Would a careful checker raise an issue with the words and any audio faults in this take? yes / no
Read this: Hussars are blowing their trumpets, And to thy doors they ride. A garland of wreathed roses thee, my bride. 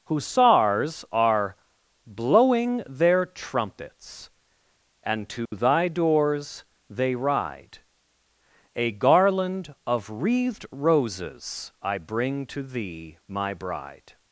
yes